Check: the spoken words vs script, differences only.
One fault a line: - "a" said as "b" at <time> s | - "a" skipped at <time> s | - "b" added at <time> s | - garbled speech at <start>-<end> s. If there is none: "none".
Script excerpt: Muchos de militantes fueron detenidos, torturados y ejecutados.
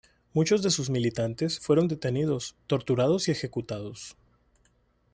- "sus" added at 0.7 s